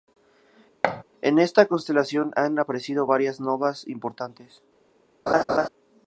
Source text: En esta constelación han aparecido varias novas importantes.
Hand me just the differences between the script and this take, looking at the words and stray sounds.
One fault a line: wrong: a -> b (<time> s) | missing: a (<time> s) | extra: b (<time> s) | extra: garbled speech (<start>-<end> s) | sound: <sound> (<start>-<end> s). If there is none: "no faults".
sound: thud (0.8-1.0 s)
sound: laugh (5.3-5.7 s)